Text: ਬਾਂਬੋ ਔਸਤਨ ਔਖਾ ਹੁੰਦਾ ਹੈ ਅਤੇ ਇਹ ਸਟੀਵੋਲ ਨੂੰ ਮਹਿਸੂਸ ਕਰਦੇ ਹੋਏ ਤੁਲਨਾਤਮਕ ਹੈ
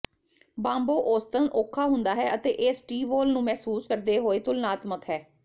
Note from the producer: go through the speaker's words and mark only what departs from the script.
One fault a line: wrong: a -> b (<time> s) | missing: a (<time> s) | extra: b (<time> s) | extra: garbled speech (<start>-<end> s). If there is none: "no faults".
no faults